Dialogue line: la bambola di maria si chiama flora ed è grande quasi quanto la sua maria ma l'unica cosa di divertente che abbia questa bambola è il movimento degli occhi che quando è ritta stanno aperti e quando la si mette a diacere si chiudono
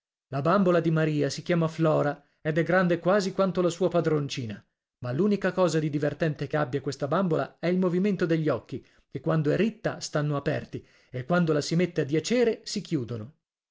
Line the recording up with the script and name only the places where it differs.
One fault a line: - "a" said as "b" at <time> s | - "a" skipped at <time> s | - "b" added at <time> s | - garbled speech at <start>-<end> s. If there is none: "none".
- "maria" said as "padroncina" at 3.9 s